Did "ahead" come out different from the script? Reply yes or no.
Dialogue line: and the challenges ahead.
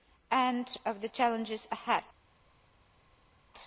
no